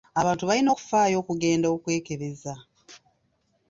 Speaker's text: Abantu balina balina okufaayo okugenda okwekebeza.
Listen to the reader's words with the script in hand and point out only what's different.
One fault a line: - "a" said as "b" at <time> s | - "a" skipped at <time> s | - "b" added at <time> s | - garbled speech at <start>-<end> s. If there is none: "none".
- "balina" skipped at 0.7 s